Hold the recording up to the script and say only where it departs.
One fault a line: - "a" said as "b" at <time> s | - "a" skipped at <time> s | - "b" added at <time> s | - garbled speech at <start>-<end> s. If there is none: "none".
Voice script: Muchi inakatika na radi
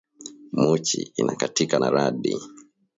none